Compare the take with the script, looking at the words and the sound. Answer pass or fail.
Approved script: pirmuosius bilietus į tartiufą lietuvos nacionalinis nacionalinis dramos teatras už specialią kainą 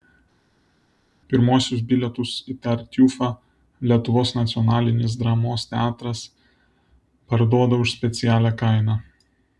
fail